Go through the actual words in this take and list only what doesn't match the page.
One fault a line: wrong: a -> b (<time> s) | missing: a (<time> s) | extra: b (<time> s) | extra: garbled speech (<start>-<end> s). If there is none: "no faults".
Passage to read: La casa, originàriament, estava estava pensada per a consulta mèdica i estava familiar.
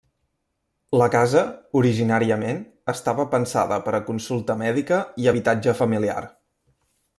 missing: estava (3.3 s)
wrong: estava -> habitatge (5.3 s)